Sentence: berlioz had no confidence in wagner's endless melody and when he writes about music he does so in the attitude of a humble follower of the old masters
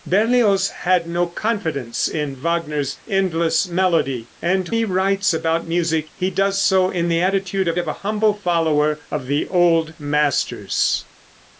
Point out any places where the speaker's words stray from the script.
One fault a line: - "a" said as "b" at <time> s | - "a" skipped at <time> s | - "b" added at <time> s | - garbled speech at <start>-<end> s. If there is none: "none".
- "when" skipped at 4.7 s
- "of" added at 7.8 s